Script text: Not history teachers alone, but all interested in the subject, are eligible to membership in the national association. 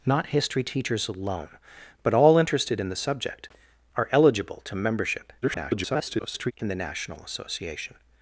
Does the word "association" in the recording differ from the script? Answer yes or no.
no